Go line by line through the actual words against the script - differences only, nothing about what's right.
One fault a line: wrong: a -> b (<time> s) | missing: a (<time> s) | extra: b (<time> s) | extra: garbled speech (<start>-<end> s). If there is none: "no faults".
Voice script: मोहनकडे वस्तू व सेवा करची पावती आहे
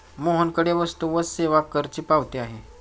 no faults